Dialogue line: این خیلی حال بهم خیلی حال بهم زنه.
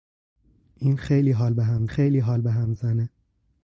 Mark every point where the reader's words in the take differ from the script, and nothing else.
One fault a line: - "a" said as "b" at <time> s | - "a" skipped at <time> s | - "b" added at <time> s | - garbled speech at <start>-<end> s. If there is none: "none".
none